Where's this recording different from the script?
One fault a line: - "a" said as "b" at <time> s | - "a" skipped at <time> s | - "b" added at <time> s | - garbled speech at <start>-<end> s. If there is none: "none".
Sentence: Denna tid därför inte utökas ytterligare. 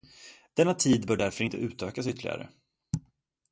- "bör" added at 1.0 s